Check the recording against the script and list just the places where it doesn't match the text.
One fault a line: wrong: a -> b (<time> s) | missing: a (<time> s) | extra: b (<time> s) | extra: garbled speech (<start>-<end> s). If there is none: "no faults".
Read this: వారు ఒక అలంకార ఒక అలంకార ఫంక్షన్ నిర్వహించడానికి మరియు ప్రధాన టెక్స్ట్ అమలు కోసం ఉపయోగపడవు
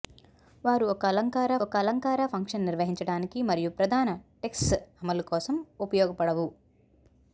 no faults